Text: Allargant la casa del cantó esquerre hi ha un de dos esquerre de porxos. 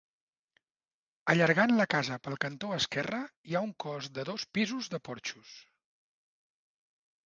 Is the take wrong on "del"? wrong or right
wrong